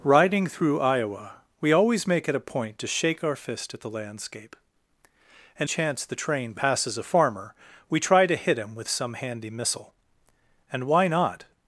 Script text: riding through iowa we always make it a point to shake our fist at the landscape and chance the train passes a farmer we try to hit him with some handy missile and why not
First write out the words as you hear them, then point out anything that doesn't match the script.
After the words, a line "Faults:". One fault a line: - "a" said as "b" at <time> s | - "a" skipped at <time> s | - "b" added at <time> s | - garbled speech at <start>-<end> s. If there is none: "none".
riding through iowa we always make it a point to shake our fist at the landscape and chance the train passes a farmer we try to hit him with some handy missile and why not
Faults:
none